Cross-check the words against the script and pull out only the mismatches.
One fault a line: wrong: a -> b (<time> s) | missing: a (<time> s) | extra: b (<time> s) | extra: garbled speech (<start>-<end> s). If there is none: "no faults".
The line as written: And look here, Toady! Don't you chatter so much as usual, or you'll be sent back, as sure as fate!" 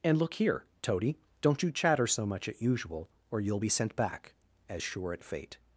wrong: as -> at (2.5 s)
wrong: as -> at (5.1 s)